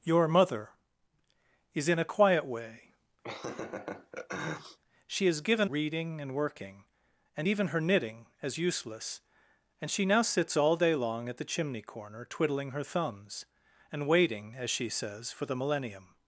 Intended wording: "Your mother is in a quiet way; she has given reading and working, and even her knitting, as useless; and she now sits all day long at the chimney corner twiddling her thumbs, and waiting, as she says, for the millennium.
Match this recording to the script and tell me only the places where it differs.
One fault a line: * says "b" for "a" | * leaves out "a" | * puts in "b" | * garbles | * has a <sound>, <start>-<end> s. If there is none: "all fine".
* has a laugh, 3.2-4.8 s